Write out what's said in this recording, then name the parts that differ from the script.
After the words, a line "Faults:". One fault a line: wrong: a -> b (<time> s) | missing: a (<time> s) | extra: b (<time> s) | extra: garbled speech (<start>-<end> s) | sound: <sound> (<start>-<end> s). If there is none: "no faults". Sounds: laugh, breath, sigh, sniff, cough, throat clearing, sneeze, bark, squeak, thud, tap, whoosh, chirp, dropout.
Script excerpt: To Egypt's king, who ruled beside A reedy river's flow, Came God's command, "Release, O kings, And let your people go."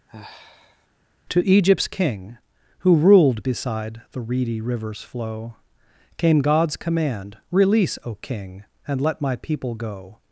To Egypt's king, who ruled beside The reedy river's flow, Came God's command, "Release, O king, And let my people go."
Faults:
sound: sigh (0.1-0.9 s)
wrong: A -> The (4.1 s)
wrong: kings -> king (8.1 s)
wrong: your -> my (9.2 s)